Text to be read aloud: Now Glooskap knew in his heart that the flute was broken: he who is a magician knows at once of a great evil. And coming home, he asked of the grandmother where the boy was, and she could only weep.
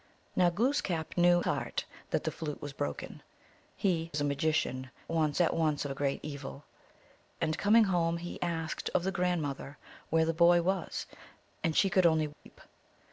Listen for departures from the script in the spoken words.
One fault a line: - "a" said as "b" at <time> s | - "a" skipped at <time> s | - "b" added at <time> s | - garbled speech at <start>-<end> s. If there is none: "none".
- "in his" skipped at 1.4 s
- "who" skipped at 4.1 s
- "knows" said as "once" at 5.1 s